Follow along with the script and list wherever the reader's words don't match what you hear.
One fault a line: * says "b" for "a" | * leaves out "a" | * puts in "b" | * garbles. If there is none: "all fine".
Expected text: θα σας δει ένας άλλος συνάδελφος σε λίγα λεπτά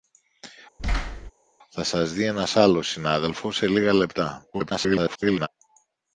* garbles